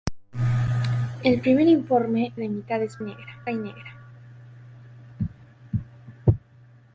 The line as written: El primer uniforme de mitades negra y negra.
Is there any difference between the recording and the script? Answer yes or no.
no